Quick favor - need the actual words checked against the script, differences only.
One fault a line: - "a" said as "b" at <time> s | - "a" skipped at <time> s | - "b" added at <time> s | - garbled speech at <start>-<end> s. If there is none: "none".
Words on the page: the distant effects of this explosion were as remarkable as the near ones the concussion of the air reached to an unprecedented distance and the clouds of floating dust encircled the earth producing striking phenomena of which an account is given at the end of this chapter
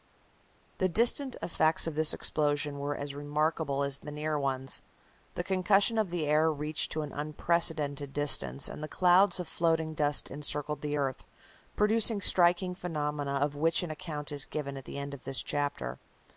none